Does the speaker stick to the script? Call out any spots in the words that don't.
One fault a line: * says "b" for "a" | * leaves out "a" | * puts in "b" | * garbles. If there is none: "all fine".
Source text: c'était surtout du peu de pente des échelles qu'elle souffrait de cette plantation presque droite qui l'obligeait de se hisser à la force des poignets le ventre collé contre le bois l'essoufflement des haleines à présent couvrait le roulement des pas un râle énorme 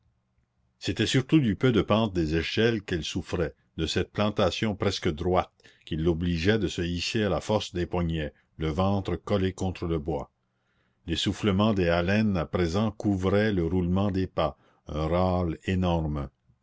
all fine